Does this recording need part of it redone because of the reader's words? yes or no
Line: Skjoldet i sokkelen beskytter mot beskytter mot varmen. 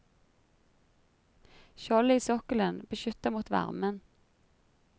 yes